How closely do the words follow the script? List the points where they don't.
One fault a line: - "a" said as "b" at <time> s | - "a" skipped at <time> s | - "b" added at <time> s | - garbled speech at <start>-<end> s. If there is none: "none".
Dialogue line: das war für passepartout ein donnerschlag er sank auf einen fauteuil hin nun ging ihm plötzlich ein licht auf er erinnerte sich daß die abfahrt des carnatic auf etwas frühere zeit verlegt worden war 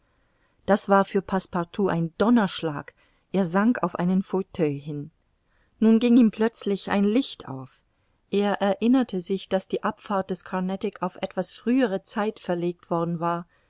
none